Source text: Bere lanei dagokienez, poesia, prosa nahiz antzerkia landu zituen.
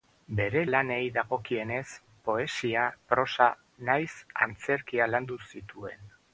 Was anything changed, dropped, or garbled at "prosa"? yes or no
no